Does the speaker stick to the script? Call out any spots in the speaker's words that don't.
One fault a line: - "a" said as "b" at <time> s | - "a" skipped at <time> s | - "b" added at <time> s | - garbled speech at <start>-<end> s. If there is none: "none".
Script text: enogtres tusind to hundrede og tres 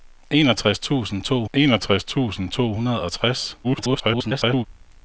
- "enogtres tusind to" added at 1.5 s
- garbled speech at 3.6-4.7 s